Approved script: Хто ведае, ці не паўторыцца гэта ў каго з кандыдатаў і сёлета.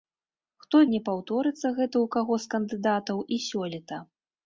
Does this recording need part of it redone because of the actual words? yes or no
yes